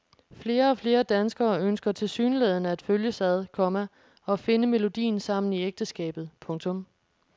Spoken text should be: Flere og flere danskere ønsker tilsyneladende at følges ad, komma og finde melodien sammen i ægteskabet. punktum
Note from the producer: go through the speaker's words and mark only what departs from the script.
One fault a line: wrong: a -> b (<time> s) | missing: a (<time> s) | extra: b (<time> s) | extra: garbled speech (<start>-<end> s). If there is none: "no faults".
no faults